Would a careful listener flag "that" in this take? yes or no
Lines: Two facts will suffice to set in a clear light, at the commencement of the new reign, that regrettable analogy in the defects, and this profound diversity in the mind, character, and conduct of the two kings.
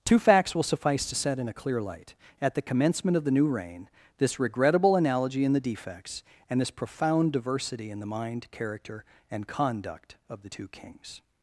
yes